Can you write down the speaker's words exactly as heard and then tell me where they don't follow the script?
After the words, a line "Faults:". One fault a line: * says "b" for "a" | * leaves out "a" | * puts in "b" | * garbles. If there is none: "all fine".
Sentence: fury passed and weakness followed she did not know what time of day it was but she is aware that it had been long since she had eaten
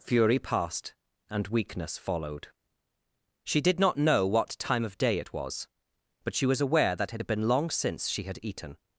fury passed and weakness followed she did not know what time of day it was but she was aware that it had been long since she had eaten
Faults:
* says "was" for "is"